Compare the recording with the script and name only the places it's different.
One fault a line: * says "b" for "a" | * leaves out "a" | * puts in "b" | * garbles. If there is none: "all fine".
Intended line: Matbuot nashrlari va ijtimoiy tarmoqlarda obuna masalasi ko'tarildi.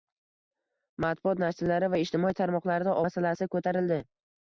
* leaves out "obuna"